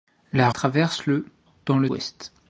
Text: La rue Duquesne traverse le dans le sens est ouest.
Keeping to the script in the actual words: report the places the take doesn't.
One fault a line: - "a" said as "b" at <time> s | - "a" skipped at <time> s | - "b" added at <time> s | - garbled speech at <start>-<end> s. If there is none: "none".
- "rue Duquesne" skipped at 0.5 s
- "sens est" skipped at 1.9 s